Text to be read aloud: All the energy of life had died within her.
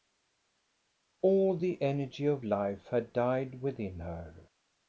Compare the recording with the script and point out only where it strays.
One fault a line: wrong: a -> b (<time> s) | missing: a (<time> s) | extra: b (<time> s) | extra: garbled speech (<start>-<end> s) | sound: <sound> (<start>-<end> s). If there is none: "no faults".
no faults